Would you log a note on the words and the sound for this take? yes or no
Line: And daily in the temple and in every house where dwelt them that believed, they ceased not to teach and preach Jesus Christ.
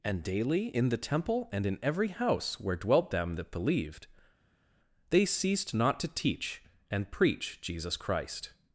no